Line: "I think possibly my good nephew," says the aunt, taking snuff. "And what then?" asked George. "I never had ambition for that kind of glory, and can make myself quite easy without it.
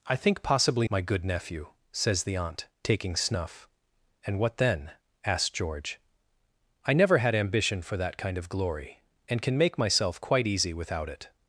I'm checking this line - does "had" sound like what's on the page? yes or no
yes